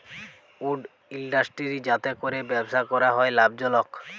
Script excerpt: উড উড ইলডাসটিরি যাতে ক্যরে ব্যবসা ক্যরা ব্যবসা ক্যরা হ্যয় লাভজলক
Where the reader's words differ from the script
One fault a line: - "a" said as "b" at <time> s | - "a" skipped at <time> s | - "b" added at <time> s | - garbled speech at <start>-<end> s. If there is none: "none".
- "উড" skipped at 0.8 s
- "ব্যবসা ক্যরা" skipped at 3.1 s